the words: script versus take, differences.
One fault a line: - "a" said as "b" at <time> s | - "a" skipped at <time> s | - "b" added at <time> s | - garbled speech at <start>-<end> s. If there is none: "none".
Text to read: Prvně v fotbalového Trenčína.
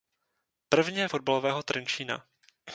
none